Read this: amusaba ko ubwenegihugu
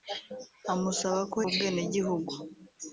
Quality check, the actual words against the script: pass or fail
pass